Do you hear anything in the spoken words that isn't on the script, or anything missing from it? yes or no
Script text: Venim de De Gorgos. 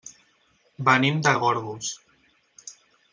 no